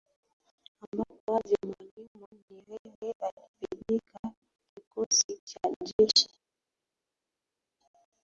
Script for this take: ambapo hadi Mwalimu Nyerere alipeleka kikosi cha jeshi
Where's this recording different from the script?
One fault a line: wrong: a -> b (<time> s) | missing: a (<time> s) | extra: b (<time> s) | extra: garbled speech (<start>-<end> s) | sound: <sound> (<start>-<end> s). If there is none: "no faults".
no faults